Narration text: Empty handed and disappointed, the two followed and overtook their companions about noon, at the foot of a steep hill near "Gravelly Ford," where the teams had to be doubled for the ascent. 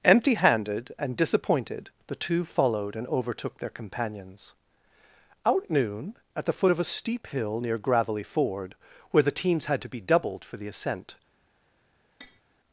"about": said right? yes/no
no